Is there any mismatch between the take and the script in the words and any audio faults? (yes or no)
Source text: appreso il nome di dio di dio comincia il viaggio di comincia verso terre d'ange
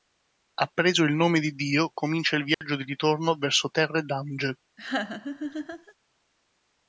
yes